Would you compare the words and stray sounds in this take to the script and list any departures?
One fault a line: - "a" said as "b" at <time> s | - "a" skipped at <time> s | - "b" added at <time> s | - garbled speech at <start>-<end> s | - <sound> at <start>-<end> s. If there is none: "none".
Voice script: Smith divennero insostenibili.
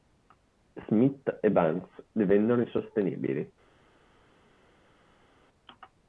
- "e Banks" added at 1.4 s